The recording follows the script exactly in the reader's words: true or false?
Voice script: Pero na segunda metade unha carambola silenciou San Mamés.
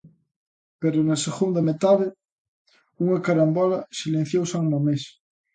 true